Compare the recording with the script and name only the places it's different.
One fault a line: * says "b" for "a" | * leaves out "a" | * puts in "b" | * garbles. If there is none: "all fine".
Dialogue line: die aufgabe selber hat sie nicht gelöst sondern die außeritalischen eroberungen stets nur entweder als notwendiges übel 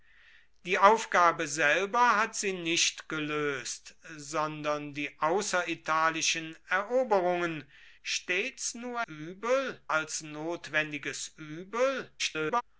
* says "übel" for "entweder"
* garbles